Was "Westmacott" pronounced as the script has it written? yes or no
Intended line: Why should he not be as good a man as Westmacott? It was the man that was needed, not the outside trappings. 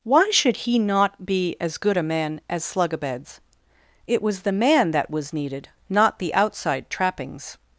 no